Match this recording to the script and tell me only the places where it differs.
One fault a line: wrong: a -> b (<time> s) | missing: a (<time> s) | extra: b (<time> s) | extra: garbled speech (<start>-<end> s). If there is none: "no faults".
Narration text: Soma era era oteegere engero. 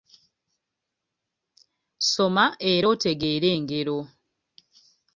missing: era (2.9 s)